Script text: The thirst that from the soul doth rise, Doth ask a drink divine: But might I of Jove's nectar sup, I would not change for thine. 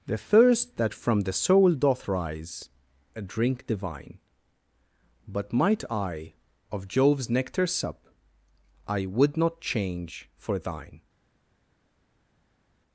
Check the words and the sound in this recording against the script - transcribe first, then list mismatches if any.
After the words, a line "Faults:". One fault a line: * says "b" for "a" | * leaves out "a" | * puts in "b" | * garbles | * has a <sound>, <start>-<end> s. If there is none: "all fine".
The thirst that from the soul doth rise, A drink divine: But might I of Jove's nectar sup, I would not change for thine.
Faults:
* leaves out "Doth ask"